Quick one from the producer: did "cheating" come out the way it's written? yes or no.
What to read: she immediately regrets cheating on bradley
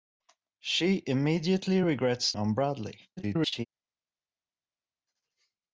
no